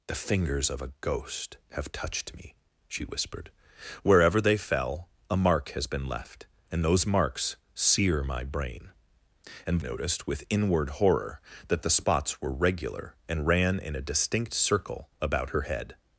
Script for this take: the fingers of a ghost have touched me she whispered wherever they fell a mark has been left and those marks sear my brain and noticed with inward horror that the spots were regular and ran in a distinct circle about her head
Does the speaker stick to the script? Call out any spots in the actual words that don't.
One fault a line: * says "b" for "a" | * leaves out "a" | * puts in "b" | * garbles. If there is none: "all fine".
all fine